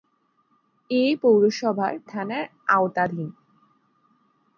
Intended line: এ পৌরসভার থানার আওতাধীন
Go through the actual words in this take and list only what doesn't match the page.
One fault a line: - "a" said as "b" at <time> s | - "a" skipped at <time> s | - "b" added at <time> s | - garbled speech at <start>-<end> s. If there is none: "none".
none